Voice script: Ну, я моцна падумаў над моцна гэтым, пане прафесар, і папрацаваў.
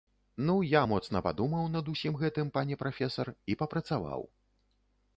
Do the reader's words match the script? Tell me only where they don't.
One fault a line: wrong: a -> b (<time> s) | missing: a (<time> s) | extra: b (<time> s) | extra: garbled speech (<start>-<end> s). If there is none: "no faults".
wrong: моцна -> усім (1.9 s)